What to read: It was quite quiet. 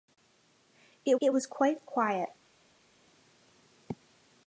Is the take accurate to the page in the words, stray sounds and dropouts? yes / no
no